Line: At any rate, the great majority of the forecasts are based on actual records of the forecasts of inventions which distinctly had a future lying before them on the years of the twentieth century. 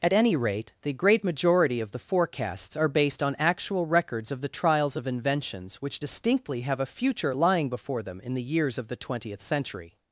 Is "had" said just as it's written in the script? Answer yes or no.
no